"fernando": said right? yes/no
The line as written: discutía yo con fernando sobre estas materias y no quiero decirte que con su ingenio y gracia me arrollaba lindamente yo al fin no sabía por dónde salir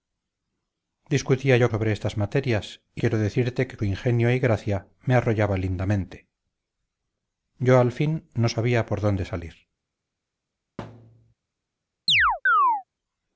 no